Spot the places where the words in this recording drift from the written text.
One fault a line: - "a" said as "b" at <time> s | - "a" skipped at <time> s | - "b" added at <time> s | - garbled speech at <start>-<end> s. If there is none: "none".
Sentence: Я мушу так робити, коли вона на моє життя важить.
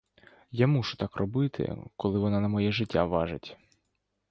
none